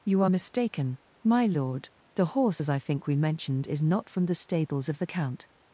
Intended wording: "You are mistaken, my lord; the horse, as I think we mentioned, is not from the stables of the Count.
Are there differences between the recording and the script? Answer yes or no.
no